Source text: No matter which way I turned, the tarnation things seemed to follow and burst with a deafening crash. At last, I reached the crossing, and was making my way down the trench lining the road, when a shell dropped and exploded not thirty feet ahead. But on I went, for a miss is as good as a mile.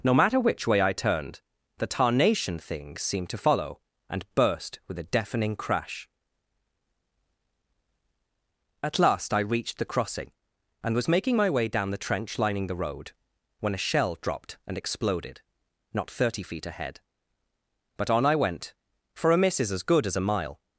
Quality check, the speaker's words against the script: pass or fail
pass